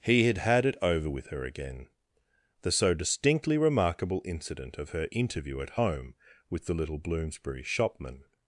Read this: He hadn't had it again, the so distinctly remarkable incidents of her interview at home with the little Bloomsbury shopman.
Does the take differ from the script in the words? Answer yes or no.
yes